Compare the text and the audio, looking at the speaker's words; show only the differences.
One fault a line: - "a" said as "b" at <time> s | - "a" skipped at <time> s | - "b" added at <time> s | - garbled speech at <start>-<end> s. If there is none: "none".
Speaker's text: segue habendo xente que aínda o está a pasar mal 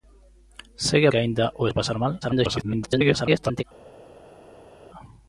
- "habendo xente" skipped at 1.1 s
- "está" skipped at 1.6 s
- garbled speech at 2.2-3.6 s